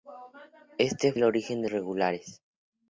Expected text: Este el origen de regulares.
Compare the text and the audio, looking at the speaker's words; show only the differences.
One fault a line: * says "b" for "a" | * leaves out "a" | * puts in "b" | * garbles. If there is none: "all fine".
all fine